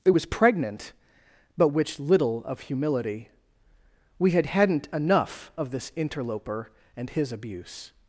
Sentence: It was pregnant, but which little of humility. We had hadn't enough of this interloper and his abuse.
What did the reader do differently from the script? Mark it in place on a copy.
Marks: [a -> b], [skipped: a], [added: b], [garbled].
It was pregnant, but which little of humility. We had hadn't enough of this interloper and his abuse.